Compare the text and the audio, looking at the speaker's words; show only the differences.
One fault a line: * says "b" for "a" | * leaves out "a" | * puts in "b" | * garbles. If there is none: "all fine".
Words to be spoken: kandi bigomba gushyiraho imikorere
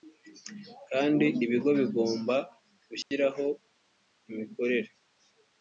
* puts in "ibigo"